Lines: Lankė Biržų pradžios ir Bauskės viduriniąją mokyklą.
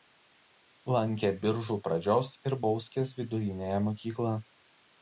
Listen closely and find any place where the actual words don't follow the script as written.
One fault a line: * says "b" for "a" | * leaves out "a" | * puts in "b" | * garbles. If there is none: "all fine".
all fine